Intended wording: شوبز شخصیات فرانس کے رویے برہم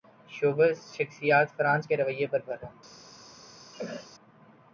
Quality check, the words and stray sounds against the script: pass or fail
fail